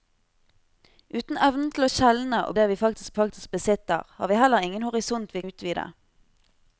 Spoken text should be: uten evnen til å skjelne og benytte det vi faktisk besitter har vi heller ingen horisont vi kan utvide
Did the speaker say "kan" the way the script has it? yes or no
no